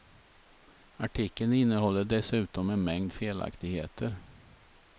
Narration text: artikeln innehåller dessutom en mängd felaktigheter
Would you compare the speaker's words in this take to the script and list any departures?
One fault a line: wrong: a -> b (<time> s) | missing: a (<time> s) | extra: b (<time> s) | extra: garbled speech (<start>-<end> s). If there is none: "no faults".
no faults